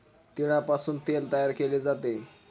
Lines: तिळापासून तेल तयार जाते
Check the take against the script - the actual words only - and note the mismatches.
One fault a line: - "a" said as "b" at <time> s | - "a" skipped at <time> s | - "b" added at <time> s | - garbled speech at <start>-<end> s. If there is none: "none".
- "केले" added at 1.5 s